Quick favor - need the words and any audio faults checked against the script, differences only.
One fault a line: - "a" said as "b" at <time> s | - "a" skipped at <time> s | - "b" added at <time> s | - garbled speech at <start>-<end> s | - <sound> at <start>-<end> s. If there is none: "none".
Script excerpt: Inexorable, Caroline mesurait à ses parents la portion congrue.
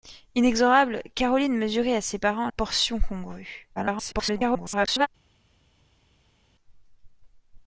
- "la" skipped at 2.5 s
- garbled speech at 3.8-5.1 s